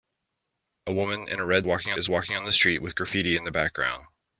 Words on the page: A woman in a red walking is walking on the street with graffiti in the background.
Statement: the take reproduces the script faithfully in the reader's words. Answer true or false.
true